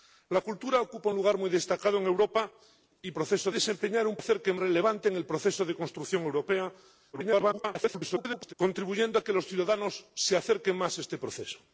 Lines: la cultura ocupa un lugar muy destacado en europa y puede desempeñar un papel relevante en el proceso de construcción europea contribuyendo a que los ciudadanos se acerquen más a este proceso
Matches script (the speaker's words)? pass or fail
fail